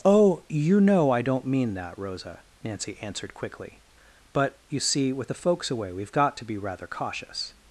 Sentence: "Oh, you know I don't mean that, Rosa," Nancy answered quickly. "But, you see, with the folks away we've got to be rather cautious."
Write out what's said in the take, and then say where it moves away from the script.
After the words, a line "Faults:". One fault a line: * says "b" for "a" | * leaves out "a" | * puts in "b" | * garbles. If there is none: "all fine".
"Oh, you know I don't mean that, Rosa," Nancy answered quickly. "But, you see, with the folks away we've got to be rather cautious."
Faults:
all fine